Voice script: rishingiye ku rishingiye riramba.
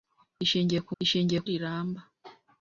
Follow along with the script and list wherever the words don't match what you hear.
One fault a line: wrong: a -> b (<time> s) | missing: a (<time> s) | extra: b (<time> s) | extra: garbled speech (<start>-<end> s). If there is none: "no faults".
no faults